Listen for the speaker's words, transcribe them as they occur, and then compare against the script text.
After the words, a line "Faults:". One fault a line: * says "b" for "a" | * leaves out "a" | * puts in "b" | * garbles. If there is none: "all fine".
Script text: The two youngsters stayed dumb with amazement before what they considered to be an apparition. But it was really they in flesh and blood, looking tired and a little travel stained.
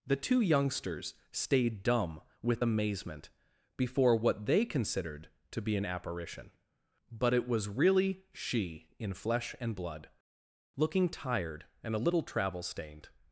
The two youngsters stayed dumb with amazement before what they considered to be an apparition. But it was really she in flesh and blood, looking tired and a little travel stained.
Faults:
* says "she" for "they"